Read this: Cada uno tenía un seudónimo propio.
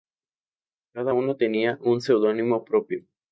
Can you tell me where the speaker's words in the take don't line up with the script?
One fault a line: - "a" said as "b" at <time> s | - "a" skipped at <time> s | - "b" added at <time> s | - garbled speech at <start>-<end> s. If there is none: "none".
none